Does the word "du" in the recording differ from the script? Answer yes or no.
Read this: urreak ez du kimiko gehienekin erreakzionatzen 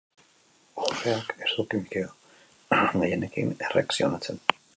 no